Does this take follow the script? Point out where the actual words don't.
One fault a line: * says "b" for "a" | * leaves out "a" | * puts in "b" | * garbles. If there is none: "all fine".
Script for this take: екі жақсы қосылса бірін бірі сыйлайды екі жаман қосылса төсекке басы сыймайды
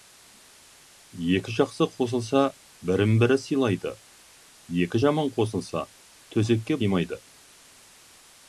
* leaves out "басы"